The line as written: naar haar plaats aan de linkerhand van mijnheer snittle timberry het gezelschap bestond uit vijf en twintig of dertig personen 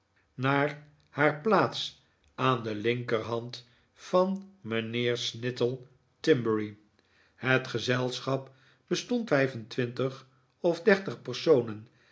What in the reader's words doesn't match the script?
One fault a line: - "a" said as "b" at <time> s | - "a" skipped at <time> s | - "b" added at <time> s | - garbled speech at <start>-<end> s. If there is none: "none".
- "uit" skipped at 9.3 s